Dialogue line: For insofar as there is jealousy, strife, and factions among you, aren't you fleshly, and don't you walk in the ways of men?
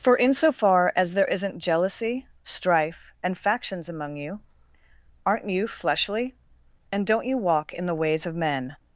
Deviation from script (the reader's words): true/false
true